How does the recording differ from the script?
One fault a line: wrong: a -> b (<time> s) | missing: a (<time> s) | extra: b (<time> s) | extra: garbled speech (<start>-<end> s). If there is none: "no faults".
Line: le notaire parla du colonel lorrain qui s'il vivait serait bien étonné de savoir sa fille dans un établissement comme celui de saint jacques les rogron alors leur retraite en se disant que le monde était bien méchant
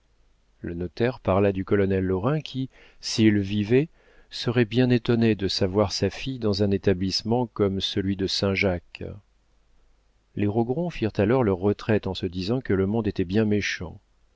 extra: firent (10.9 s)